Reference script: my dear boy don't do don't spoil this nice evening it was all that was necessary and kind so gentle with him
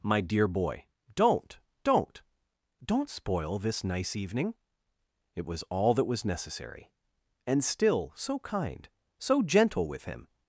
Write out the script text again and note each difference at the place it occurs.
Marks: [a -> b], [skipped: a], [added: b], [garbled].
my dear boy don't [do -> don't] don't spoil this nice evening it was all that was necessary and [added: still so] kind so gentle with him